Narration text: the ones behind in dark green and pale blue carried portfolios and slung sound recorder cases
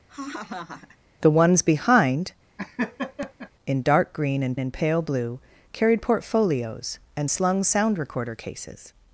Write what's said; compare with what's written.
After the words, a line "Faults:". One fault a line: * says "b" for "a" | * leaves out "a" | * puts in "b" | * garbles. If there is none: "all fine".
the ones behind in dark green and and pale blue carried portfolios and slung sound recorder cases
Faults:
* puts in "and"